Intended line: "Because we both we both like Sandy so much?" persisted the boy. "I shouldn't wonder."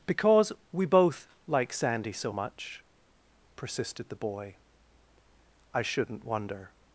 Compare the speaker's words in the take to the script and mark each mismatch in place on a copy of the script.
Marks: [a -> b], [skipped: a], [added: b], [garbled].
"Because we both [skipped: we both] like Sandy so much?" persisted the boy. "I shouldn't wonder."